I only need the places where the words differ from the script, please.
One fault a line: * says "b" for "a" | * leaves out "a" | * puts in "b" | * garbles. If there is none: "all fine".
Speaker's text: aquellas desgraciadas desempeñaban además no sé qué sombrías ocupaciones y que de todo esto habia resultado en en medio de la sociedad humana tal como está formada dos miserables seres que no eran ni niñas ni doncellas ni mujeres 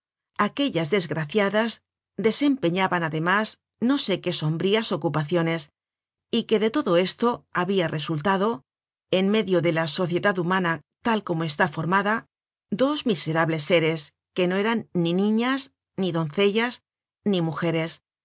* leaves out "en"